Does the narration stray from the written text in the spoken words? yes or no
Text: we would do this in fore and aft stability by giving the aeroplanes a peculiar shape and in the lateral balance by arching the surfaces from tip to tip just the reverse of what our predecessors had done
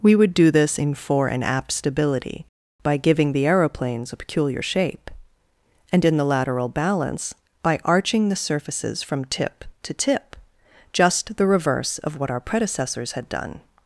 no